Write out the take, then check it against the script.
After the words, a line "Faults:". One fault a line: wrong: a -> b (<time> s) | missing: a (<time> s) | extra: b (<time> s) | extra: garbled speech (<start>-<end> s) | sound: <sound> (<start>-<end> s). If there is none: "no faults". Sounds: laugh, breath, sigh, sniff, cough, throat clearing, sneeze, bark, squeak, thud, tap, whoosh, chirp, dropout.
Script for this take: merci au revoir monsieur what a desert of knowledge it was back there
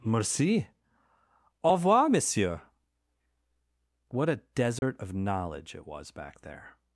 merci au revoir monsieur what a desert of knowledge it was back there
Faults:
sound: dropout (4.8-4.8 s)